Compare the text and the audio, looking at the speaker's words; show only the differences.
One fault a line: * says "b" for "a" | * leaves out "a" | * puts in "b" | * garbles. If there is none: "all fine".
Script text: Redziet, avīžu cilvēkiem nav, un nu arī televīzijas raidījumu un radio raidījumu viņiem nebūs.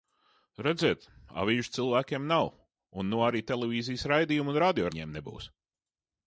* leaves out "raidījumu"